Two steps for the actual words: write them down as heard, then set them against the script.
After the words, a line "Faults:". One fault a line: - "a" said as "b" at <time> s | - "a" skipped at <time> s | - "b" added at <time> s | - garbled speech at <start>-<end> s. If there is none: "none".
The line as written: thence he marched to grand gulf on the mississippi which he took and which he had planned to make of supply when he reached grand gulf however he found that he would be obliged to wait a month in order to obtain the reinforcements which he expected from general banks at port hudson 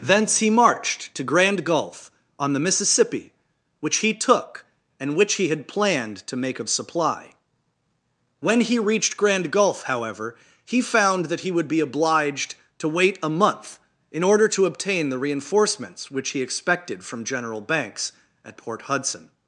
thence he marched to grand gulf on the mississippi which he took and which he had planned to make of supply when he reached grand gulf however he found that he would be obliged to wait a month in order to obtain the reinforcements which he expected from general banks at port hudson
Faults:
none